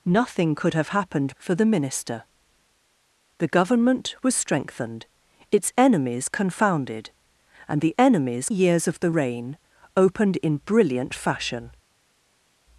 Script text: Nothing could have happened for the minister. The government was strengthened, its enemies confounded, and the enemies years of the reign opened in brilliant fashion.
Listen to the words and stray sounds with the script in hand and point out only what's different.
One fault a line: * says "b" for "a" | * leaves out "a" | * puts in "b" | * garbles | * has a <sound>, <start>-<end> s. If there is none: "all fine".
all fine